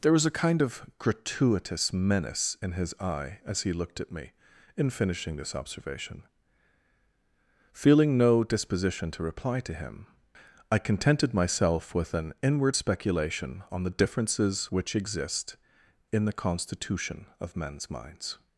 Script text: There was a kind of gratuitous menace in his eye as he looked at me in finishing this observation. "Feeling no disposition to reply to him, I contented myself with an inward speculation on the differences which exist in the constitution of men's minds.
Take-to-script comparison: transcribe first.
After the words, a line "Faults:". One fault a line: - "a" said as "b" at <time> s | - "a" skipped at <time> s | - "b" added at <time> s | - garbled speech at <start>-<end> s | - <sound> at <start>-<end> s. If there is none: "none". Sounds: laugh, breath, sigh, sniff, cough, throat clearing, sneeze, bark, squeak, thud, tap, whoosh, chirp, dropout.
There was a kind of gratuitous menace in his eye as he looked at me in finishing this observation. "Feeling no disposition to reply to him, I contented myself with an inward speculation on the differences which exist in the constitution of men's minds.
Faults:
none